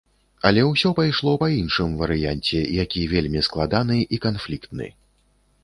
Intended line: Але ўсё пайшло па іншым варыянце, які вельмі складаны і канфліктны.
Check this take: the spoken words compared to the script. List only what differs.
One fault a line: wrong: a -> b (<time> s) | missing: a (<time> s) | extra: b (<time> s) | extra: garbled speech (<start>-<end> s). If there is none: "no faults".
no faults